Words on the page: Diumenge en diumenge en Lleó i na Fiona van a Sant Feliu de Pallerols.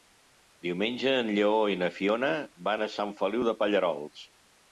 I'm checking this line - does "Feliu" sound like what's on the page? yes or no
yes